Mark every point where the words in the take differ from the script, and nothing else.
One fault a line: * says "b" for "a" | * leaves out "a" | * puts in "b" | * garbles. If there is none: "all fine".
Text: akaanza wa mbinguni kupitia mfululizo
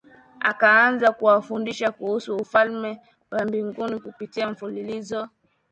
* puts in "kuwafundisha kuhusu Ufalme"